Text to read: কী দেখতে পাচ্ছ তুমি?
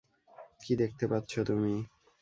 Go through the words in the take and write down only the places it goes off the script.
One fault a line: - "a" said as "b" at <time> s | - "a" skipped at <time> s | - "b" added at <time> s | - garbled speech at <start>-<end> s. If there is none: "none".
none